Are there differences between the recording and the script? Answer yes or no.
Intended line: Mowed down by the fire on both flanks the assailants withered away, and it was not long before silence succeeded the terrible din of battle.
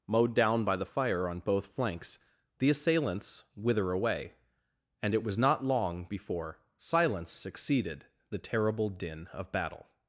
yes